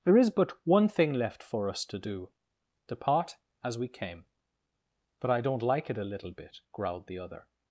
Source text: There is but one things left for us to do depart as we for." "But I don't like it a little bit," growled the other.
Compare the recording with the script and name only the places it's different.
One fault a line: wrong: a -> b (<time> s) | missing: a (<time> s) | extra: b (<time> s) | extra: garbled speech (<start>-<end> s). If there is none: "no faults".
wrong: things -> thing (0.9 s)
wrong: for -> came (3.9 s)